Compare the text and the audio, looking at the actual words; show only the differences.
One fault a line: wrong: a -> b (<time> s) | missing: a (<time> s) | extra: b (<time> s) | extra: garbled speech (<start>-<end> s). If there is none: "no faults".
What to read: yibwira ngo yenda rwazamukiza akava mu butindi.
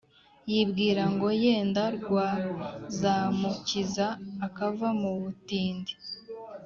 no faults